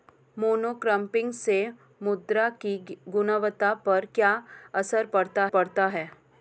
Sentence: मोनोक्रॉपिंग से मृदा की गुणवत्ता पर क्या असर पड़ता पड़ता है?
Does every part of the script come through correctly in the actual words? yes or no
yes